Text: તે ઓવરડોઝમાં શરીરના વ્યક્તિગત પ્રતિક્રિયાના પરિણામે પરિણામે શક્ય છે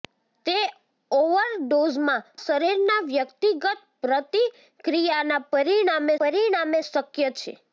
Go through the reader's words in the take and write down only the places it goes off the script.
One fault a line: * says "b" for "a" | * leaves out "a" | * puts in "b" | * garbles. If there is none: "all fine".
all fine